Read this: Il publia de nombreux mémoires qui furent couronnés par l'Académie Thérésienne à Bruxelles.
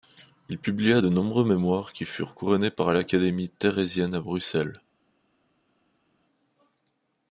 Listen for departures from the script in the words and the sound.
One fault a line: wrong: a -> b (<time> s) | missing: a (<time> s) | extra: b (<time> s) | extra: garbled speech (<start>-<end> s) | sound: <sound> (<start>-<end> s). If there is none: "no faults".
no faults